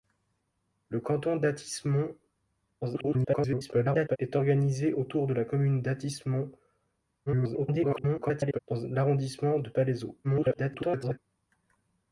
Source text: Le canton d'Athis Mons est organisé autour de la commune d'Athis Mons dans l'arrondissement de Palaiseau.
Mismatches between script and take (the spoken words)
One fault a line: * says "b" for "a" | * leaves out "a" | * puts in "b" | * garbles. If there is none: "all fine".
* garbles
* garbles
* garbles